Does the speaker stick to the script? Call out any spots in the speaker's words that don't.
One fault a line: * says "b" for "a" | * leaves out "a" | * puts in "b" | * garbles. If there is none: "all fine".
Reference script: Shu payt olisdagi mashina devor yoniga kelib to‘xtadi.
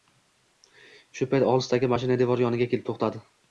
all fine